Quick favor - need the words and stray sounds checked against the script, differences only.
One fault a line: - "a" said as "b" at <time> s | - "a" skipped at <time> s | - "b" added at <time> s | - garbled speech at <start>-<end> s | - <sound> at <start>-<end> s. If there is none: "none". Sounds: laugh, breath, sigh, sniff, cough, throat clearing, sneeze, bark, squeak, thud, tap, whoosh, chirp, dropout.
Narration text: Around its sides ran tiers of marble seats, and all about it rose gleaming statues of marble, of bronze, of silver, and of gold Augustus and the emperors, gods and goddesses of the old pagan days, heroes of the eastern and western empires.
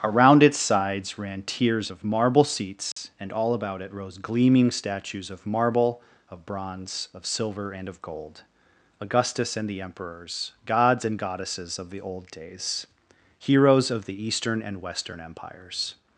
- dropout at 2.9-3.0 s
- "pagan" skipped at 12.3 s